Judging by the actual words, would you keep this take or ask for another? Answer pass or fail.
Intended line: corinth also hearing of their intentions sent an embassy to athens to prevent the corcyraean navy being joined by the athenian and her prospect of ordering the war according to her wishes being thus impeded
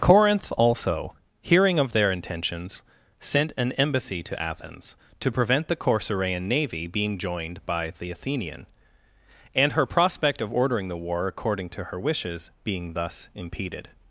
pass